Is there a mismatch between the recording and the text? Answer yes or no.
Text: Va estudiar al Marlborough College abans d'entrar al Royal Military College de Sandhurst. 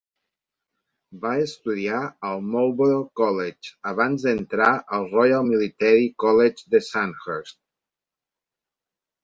no